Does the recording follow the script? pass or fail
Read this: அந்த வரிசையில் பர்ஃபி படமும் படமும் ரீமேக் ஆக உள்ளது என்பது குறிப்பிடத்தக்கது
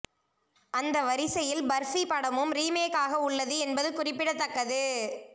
fail